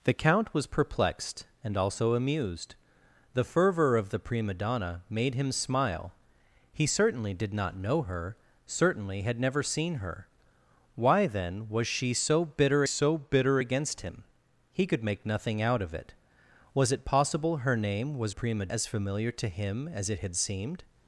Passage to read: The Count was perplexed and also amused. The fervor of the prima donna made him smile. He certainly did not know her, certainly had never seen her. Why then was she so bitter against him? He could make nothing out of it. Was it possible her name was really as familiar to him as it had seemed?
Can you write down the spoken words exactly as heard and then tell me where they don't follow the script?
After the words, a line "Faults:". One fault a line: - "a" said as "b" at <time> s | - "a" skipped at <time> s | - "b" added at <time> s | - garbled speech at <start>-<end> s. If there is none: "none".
The Count was perplexed and also amused. The fervor of the prima donna made him smile. He certainly did not know her, certainly had never seen her. Why then was she so bitter so bitter against him? He could make nothing out of it. Was it possible her name was prima as familiar to him as it had seemed?
Faults:
- "so bitter" added at 12.8 s
- "really" said as "prima" at 18.3 s